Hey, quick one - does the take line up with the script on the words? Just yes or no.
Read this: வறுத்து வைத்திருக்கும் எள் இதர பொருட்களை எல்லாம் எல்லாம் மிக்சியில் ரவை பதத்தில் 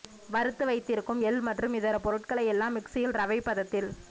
no